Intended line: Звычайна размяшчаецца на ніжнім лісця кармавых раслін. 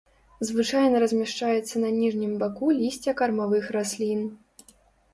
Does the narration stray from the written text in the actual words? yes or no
yes